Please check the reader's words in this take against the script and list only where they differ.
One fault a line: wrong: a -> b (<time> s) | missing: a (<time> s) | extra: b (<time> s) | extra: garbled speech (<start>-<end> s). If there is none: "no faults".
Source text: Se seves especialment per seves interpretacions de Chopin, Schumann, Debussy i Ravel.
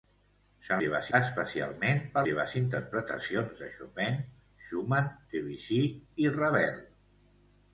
no faults